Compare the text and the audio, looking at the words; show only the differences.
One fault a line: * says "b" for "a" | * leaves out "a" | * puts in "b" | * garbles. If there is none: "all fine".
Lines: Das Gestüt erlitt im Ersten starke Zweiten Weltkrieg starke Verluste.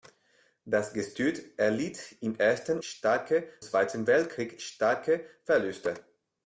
all fine